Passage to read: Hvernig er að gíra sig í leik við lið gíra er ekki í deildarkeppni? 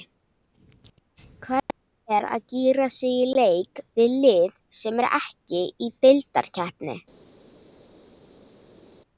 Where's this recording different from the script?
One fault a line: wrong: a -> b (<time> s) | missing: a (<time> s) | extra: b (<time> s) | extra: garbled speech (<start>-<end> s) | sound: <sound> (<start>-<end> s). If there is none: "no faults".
wrong: gíra -> sem (4.8 s)